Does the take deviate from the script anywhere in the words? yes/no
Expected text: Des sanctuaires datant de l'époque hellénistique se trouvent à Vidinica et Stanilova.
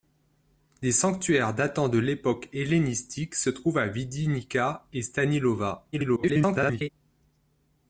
yes